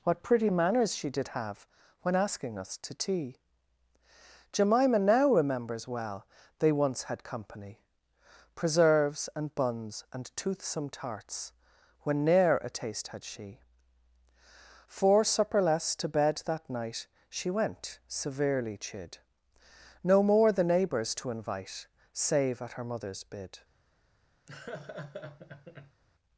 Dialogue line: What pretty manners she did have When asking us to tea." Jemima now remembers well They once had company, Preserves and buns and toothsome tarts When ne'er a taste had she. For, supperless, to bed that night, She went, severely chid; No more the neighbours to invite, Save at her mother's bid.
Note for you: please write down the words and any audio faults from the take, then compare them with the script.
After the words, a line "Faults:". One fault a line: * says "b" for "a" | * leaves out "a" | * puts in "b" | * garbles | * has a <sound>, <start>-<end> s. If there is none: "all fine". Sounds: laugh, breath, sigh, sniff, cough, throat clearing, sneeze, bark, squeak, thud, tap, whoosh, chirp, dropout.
What pretty manners she did have When asking us to tea." Jemima now remembers well They once had company, Preserves and buns and toothsome tarts When ne'er a taste had she. For, supperless, to bed that night, She went, severely chid; No more the neighbours to invite, Save at her mother's bid.
Faults:
* has a laugh, 24.5-26.0 s